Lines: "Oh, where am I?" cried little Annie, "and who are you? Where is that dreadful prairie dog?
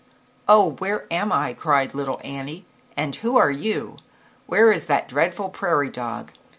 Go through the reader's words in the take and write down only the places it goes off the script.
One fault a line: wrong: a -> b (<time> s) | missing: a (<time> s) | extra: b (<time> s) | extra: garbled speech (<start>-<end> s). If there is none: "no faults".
no faults